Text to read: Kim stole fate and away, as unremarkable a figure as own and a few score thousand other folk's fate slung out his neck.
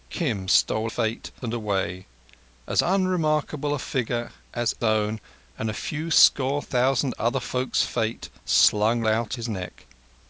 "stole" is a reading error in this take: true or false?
false